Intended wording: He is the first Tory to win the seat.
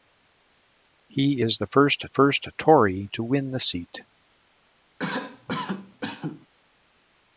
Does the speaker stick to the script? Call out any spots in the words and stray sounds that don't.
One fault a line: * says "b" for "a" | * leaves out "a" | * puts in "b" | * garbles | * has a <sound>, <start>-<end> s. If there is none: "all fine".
* puts in "first"
* has a cough, 5.0-6.5 s